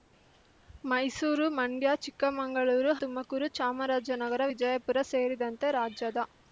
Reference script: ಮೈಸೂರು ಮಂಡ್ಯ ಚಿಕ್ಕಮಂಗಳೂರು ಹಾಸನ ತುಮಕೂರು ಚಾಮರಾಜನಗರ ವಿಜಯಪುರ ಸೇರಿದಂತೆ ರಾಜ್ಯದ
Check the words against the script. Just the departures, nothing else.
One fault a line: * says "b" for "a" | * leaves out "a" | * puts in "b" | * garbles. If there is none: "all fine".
* leaves out "ಹಾಸನ"